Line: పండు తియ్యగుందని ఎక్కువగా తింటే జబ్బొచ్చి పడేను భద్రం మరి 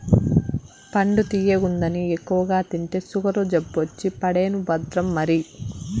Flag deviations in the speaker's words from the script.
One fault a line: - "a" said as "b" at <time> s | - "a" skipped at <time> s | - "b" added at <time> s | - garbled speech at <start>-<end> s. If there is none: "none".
- "సుగరు" added at 3.1 s